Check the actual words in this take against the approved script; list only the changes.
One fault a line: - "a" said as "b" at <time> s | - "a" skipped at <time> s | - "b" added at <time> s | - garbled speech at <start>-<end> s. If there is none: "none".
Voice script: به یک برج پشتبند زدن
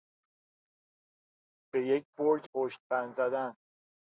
none